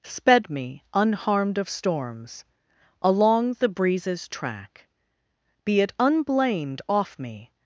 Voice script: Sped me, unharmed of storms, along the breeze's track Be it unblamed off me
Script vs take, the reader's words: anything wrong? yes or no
no